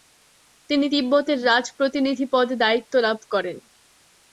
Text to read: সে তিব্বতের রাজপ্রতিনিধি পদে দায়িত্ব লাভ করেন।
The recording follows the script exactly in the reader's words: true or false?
false